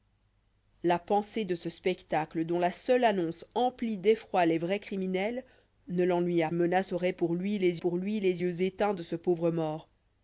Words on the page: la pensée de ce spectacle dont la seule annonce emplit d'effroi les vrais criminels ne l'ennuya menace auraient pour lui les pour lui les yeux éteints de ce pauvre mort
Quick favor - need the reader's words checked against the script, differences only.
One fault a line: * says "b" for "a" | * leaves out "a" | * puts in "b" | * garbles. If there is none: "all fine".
all fine